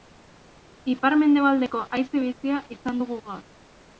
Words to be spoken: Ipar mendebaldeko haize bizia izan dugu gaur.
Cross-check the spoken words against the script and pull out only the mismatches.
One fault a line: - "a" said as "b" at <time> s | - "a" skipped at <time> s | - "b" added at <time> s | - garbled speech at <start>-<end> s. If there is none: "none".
none